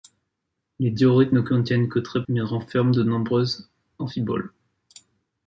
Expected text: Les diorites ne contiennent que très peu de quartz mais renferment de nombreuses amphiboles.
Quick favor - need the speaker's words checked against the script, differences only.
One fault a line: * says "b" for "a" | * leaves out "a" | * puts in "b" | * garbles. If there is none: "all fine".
* leaves out "peu de quartz"